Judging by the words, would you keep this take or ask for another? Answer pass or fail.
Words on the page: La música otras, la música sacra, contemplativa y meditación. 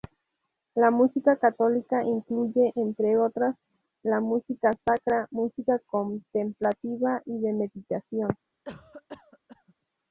fail